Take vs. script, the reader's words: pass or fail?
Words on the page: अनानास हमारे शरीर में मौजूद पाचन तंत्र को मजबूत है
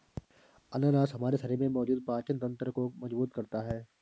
fail